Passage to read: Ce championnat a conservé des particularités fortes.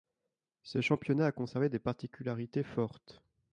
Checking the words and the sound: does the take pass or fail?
pass